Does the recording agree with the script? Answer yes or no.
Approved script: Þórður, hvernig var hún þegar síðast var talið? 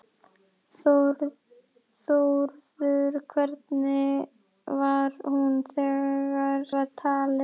no